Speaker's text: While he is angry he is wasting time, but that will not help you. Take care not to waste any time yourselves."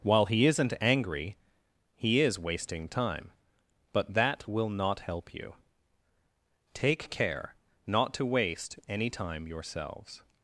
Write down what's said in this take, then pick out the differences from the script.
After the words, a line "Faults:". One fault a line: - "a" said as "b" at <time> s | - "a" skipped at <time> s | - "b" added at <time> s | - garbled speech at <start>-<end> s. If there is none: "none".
While he isn't angry he is wasting time, but that will not help you. Take care not to waste any time yourselves."
Faults:
- "is" said as "isn't" at 0.5 s